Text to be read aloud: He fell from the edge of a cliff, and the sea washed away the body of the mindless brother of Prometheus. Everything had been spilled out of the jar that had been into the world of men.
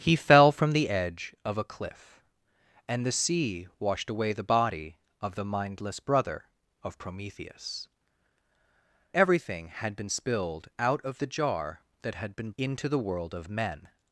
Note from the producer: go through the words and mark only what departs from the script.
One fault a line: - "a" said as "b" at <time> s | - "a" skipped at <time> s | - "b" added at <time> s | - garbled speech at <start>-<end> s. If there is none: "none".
none